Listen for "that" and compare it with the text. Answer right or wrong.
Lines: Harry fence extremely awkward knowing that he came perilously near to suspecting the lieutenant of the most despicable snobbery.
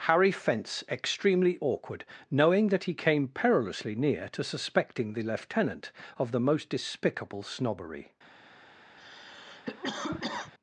right